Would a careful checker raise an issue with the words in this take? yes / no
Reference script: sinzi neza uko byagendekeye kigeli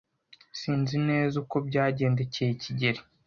no